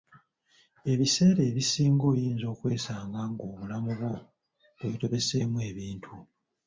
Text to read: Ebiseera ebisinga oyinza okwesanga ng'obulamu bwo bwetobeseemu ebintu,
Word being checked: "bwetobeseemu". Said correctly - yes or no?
yes